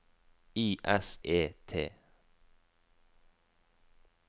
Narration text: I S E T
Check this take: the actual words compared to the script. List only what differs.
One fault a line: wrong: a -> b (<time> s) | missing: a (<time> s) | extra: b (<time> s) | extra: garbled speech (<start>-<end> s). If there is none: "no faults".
no faults